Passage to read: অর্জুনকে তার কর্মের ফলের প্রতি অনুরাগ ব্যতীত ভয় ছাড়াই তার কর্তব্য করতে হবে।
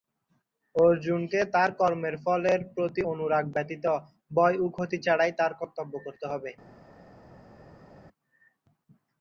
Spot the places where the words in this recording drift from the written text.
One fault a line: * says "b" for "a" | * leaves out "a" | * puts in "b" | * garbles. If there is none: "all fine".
* puts in "ও ক্ষতি"